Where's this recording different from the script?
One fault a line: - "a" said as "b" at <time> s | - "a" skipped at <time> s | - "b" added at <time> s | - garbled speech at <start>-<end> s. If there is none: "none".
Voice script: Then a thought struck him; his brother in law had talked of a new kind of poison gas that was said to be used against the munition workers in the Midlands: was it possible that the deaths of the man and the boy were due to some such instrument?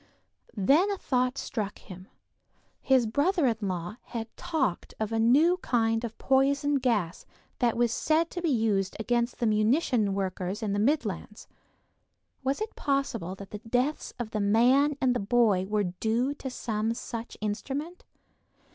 none